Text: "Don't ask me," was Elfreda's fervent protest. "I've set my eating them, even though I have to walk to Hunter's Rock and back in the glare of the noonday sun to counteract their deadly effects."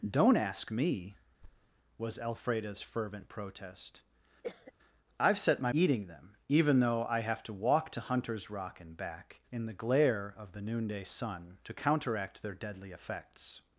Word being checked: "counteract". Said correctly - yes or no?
yes